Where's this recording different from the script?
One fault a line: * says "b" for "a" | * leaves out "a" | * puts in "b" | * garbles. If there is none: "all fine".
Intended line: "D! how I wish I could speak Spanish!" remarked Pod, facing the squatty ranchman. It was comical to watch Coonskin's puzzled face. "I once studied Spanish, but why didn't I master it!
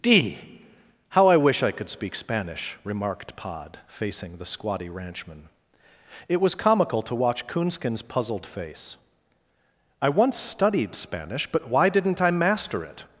all fine